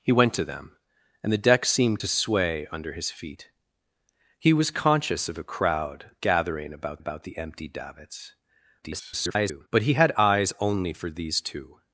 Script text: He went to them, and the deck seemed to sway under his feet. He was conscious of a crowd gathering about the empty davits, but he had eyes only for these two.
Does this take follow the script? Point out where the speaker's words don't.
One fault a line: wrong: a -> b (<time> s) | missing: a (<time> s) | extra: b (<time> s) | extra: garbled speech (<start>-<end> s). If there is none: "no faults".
extra: about (7.0 s)
extra: garbled speech (8.8-9.7 s)